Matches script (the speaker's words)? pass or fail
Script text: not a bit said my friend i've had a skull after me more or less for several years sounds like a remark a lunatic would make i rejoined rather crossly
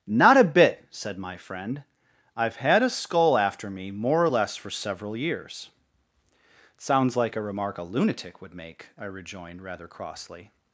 pass